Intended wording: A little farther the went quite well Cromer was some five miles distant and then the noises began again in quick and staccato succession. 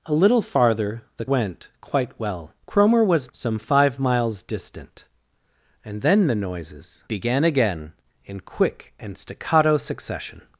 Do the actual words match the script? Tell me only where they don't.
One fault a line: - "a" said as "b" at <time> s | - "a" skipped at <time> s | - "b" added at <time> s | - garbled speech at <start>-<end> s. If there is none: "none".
none